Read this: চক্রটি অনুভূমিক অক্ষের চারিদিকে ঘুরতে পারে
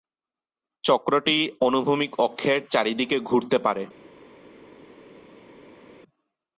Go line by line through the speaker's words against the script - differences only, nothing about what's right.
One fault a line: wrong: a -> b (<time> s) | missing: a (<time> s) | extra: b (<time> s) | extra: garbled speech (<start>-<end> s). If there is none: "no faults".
no faults